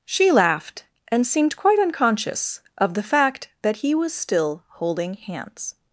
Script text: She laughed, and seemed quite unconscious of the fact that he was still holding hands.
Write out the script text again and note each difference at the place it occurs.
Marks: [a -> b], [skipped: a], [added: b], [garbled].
She laughed, and seemed quite unconscious of the fact that he was still holding hands.